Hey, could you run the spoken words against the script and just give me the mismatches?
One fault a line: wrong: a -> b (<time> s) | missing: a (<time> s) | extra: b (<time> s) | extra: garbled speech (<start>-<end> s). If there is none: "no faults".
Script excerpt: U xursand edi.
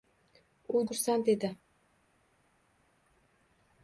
no faults